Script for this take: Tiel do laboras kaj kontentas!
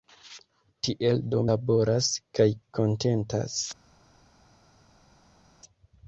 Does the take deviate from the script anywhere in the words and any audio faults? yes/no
no